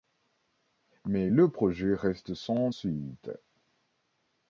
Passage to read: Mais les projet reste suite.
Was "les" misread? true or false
true